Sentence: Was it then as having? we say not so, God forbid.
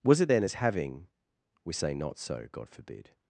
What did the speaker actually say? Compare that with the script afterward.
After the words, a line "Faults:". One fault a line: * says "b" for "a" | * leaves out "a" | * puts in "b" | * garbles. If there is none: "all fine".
Was it then as having? we say not so, God forbid.
Faults:
all fine